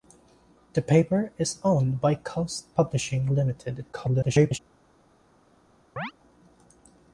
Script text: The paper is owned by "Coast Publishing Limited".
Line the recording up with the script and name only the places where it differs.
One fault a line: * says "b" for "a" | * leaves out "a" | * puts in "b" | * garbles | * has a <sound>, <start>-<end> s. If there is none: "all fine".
* garbles
* has a chirp, 6.0-6.1 s